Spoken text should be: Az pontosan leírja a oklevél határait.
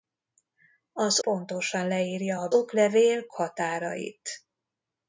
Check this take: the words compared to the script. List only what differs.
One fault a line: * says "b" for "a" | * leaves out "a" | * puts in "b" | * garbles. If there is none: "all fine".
all fine